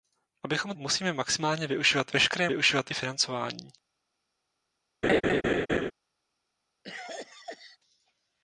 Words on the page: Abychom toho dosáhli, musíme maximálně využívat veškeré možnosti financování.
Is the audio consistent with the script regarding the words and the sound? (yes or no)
no